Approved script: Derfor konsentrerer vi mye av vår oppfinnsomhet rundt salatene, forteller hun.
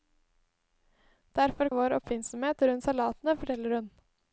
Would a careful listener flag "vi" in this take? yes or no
yes